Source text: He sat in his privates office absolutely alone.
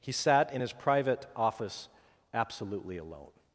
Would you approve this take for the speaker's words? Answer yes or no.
no